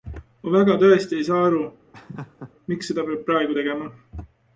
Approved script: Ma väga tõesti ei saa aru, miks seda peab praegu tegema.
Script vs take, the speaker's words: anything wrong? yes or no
no